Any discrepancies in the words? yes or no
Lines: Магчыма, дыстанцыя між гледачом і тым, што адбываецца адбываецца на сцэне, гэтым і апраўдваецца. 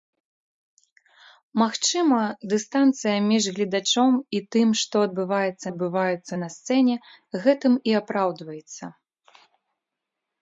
no